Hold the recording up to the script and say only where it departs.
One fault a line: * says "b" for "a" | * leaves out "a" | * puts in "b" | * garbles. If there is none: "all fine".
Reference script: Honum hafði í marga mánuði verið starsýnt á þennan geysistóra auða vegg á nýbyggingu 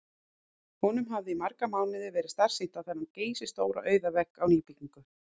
all fine